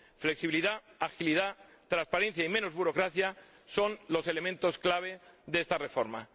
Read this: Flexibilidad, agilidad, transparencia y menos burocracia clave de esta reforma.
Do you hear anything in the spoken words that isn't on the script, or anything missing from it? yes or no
yes